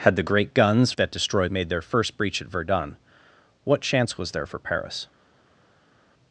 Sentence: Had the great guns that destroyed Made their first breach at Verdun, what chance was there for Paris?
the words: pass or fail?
pass